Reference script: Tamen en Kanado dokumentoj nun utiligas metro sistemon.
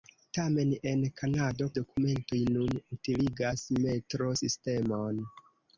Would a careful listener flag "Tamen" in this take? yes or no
no